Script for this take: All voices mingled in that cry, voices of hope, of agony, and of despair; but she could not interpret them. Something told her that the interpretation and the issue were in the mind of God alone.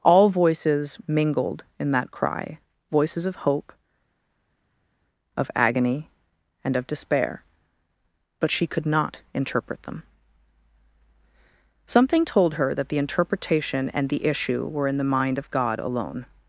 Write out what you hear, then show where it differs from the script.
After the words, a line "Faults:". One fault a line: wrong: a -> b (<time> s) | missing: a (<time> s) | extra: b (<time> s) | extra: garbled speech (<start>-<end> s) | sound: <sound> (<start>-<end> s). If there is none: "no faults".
All voices mingled in that cry, voices of hope, of agony, and of despair; but she could not interpret them. Something told her that the interpretation and the issue were in the mind of God alone.
Faults:
no faults